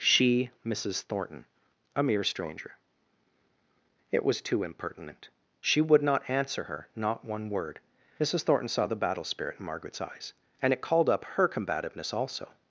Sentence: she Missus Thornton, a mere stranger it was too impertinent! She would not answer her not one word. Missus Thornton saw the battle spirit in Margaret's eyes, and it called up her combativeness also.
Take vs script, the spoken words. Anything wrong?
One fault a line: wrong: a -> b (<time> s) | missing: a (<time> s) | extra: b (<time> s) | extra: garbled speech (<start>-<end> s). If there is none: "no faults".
no faults